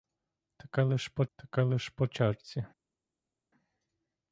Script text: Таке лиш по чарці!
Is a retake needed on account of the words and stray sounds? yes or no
yes